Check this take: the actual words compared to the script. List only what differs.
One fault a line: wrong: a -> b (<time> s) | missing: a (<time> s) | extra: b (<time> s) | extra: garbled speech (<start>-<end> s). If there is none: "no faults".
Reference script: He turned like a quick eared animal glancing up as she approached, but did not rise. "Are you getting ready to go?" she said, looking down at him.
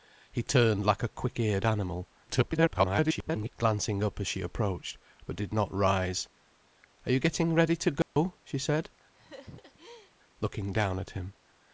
extra: garbled speech (2.3-3.5 s)